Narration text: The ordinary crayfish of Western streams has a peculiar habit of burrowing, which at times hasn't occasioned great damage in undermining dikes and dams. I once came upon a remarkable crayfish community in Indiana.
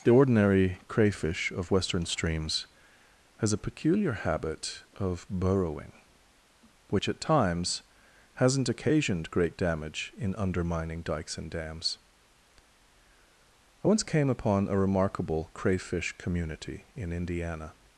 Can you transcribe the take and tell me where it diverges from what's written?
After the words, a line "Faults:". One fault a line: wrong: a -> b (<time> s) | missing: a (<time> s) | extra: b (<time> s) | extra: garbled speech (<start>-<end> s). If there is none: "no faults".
The ordinary crayfish of Western streams has a peculiar habit of burrowing, which at times hasn't occasioned great damage in undermining dikes and dams. I once came upon a remarkable crayfish community in Indiana.
Faults:
no faults